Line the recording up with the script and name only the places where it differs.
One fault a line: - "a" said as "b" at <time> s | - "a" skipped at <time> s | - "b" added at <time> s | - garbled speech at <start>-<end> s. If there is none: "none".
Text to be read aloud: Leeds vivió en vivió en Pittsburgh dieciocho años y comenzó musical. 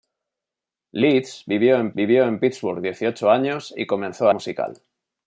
none